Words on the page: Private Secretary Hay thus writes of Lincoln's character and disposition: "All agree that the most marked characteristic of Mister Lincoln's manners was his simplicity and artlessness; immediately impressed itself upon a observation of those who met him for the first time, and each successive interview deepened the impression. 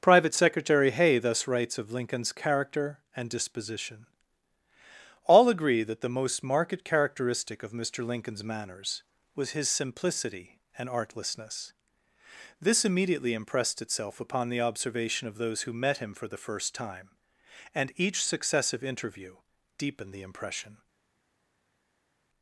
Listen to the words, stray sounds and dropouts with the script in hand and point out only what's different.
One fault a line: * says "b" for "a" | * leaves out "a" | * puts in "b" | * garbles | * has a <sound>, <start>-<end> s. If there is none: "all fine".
* puts in "this"
* says "the" for "a"